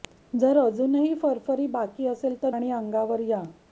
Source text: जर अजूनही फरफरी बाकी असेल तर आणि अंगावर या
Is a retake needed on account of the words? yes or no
no